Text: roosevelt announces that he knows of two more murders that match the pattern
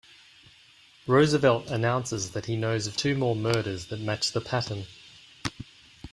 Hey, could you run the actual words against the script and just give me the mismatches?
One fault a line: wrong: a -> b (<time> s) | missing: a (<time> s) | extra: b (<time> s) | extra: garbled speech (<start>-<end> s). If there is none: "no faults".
no faults